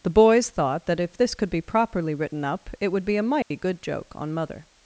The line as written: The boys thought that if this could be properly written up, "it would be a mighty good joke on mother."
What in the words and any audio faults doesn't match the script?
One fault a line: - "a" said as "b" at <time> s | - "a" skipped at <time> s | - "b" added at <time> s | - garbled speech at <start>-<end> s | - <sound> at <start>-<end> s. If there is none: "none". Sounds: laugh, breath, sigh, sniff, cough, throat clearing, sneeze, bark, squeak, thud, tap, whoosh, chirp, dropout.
- dropout at 3.4-3.5 s